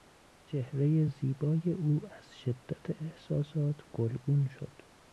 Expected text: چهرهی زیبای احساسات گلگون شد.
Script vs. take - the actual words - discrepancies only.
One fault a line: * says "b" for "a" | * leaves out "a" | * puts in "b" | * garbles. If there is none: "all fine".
* puts in "او از شدت"